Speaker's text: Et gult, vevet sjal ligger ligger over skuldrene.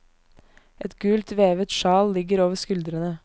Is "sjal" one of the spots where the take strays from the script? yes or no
no